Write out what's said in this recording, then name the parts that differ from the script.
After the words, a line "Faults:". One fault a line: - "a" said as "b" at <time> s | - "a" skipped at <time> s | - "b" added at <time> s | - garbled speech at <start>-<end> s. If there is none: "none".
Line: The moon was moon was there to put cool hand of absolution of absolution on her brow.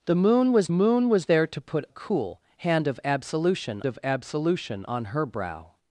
The moon was moon was there to put cool hand of absolution of absolution on her brow.
Faults:
none